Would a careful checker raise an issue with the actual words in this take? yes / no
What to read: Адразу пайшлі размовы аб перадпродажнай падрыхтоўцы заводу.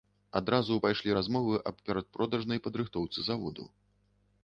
no